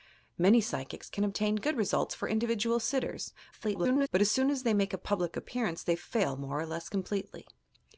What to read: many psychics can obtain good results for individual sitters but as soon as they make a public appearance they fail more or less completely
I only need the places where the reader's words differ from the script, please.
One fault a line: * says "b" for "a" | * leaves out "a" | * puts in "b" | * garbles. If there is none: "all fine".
* garbles